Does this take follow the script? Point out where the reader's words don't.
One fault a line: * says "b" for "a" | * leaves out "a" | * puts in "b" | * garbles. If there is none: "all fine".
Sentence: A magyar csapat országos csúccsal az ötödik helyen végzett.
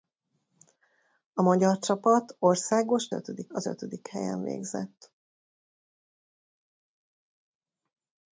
* says "ötödik" for "csúccsal"